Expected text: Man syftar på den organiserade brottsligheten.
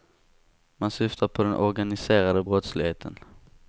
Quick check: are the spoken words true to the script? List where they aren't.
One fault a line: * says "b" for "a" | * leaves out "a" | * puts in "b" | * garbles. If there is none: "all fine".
all fine